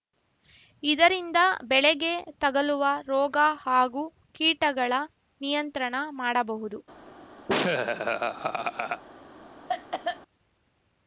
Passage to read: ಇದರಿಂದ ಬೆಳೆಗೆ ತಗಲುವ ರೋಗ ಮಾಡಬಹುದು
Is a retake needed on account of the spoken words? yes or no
yes